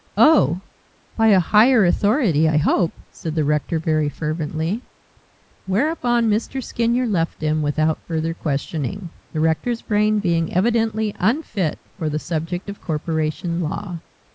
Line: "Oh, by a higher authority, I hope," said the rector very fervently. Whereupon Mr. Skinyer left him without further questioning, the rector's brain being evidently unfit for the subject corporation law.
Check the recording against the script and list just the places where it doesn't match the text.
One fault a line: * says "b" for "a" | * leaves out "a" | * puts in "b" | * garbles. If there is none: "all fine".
* puts in "of"